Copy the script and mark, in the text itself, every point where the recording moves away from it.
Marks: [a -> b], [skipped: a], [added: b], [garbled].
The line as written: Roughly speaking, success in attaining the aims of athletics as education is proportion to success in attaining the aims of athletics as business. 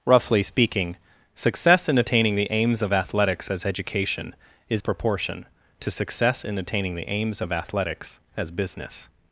Roughly speaking, success in attaining the aims of athletics as education is proportion to success in attaining the aims of athletics as business.